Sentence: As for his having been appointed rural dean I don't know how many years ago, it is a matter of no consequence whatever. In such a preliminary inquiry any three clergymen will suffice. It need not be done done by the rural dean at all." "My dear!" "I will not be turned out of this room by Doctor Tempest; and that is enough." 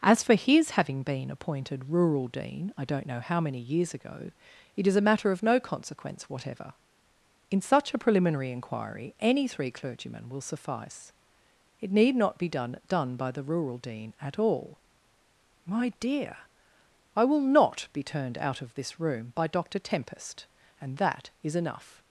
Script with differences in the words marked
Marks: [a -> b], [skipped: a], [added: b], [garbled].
As for his having been appointed rural dean I don't know how many years ago, it is a matter of no consequence whatever. In such a preliminary inquiry any three clergymen will suffice. It need not be done done by the rural dean at all." "My dear!" "I will not be turned out of this room by Doctor Tempest; and that is enough."